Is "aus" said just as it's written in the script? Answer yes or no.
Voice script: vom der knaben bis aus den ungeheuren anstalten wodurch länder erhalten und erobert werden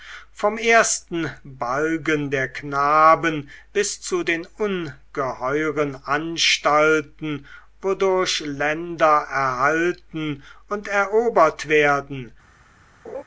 no